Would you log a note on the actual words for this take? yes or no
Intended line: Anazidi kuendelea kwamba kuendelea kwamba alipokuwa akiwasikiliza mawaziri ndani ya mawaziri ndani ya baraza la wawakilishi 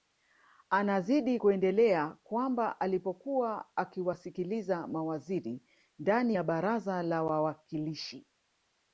yes